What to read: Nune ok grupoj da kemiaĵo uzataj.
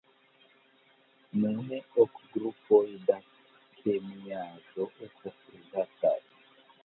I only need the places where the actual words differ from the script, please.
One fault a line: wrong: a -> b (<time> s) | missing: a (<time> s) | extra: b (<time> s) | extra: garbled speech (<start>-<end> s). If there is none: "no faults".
extra: estas (5.1 s)